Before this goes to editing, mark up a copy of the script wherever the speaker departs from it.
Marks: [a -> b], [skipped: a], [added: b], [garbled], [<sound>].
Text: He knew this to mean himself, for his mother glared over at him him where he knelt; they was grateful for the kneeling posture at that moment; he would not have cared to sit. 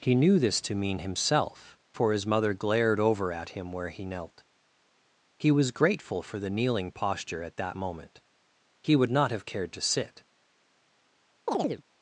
He knew this to mean himself, for his mother glared over at him [skipped: him] where he knelt; [they -> he] was grateful for the kneeling posture at that moment; he would not have cared to sit. [chirp]